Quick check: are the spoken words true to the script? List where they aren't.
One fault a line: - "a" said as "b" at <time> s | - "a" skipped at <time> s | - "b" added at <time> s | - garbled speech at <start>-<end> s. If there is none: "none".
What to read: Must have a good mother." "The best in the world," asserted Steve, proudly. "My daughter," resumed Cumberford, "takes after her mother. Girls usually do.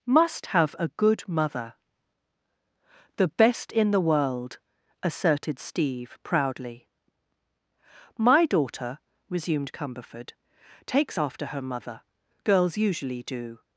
none